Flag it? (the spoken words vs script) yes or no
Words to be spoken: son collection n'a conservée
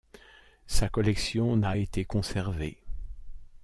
yes